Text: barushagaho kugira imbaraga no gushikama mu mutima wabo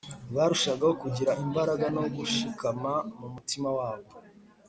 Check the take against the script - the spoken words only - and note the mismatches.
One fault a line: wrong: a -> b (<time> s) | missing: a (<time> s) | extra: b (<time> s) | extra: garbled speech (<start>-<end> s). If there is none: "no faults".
no faults